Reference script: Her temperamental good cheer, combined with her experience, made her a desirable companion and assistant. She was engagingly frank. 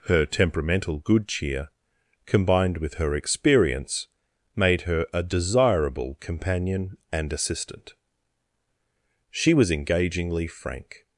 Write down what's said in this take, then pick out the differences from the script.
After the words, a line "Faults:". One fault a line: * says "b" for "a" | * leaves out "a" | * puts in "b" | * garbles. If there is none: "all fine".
Her temperamental good cheer, combined with her experience, made her a desirable companion and assistant. She was engagingly frank.
Faults:
all fine